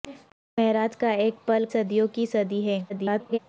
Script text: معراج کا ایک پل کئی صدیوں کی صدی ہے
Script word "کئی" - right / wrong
wrong